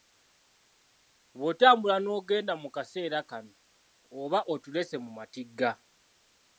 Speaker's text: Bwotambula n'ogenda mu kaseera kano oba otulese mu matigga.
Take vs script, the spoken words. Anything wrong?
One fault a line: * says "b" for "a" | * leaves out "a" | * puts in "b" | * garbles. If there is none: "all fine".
all fine